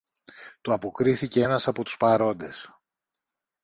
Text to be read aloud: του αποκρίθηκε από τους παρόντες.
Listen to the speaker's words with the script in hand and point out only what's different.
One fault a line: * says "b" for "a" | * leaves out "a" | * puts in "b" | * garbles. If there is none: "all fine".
* puts in "ένας"